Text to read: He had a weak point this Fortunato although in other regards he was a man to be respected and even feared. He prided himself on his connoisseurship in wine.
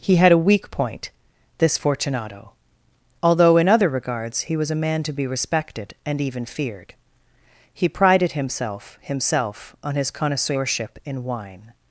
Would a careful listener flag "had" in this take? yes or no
no